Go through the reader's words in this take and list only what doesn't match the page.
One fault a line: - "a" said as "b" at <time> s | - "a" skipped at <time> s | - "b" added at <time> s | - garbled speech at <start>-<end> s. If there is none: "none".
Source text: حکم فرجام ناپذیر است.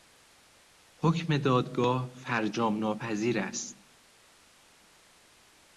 - "دادگاه" added at 1.4 s